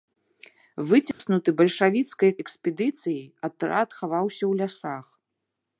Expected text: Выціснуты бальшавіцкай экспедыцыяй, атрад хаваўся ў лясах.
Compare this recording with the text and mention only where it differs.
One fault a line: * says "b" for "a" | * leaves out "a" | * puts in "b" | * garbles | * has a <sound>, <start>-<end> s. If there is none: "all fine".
* has a dropout, 1.1-1.2 s